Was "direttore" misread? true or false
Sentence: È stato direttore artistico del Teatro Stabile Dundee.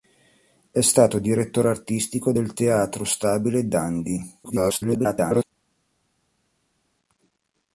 false